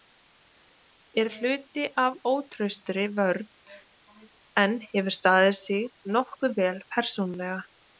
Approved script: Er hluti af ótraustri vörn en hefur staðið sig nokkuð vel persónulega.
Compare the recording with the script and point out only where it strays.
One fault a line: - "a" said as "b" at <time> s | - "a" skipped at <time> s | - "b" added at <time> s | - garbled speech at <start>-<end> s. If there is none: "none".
none